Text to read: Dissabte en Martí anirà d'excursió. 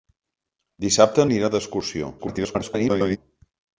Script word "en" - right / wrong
wrong